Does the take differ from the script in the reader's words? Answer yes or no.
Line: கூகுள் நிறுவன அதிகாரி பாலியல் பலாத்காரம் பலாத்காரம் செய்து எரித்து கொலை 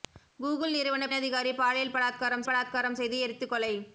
no